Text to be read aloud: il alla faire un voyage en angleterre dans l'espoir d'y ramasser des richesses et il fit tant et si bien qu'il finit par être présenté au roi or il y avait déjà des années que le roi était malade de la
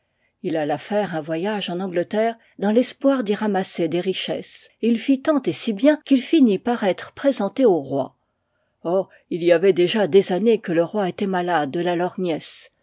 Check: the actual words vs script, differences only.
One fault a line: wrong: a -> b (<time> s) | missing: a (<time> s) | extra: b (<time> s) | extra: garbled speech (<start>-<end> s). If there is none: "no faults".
no faults